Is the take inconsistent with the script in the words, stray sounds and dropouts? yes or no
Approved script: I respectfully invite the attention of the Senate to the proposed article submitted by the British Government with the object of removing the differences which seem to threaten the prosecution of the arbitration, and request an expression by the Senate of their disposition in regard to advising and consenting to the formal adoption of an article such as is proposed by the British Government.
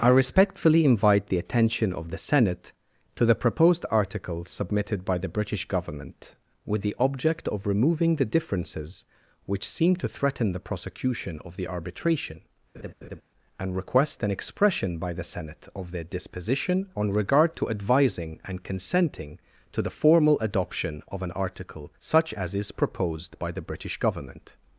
yes